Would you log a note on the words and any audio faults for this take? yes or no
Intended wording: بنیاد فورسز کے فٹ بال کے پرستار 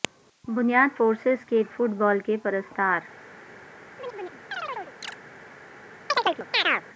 yes